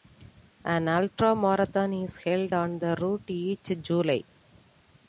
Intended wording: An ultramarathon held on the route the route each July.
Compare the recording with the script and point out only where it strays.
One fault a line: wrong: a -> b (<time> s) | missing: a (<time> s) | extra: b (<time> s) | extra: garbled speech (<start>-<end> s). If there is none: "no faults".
extra: is (2.0 s)
missing: the route (3.3 s)